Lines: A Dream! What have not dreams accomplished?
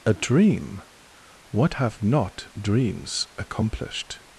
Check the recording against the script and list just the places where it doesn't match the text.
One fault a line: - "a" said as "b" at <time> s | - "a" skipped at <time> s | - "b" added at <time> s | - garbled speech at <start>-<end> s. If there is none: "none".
none